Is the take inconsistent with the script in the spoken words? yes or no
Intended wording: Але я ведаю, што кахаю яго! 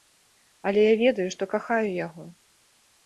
no